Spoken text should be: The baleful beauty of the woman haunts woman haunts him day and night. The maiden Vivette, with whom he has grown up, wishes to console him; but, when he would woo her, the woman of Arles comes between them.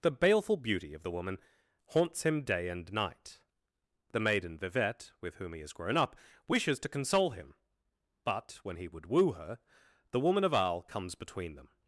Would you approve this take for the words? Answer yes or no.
no